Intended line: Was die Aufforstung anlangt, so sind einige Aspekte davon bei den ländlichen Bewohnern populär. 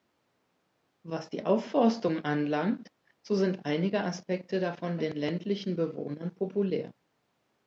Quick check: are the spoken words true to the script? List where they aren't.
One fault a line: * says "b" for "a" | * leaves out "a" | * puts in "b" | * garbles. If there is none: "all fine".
* leaves out "bei"